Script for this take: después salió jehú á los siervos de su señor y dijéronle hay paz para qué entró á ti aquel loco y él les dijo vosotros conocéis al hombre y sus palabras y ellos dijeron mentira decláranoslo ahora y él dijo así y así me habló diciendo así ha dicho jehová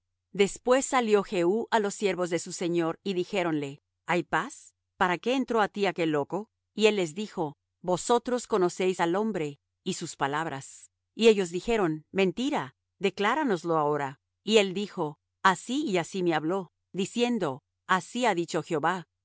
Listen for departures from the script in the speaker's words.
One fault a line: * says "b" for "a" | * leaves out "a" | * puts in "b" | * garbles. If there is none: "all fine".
all fine